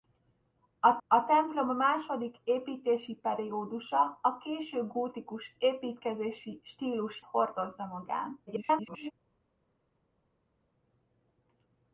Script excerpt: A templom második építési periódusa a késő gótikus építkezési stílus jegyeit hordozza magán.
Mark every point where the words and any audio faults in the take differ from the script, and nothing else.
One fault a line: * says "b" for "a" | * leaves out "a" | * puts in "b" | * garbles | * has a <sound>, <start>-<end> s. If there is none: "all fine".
* puts in "a"
* leaves out "jegyeit"
* garbles